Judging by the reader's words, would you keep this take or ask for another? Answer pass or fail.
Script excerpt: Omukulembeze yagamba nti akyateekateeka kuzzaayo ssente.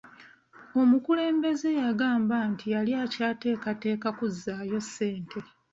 fail